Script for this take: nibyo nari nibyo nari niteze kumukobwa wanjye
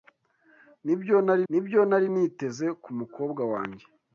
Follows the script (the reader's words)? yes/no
yes